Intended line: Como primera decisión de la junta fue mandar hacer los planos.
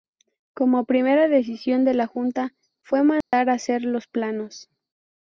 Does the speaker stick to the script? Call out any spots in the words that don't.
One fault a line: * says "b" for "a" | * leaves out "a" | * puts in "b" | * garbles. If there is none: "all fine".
all fine